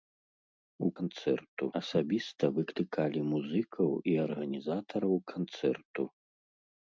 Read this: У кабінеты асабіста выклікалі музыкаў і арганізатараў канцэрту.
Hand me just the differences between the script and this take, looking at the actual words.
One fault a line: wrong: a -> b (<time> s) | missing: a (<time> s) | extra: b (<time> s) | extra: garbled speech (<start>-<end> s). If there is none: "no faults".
wrong: кабінеты -> канцэрту (1.0 s)